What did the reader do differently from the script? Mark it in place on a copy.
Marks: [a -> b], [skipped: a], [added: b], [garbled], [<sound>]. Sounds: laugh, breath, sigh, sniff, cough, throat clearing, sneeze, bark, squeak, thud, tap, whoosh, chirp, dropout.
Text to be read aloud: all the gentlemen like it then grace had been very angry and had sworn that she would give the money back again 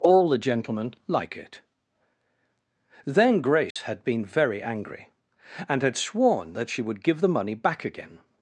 all the gentlemen like it then grace [dropout] had been very angry and had sworn that she would give the money back again